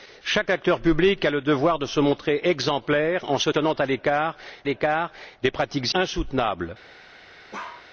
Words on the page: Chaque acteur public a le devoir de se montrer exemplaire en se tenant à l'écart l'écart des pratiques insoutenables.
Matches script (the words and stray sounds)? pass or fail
fail